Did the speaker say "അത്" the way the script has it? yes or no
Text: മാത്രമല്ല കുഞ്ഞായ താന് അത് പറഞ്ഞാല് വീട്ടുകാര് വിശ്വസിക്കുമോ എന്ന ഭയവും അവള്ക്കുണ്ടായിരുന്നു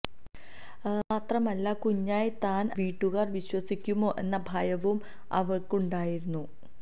no